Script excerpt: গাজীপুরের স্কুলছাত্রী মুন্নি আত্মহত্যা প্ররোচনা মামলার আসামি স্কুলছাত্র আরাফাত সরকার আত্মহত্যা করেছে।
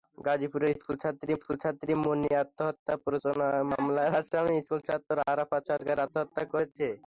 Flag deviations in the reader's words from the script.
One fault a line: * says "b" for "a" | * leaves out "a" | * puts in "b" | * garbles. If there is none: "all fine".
* puts in "স্কুলছাত্রী"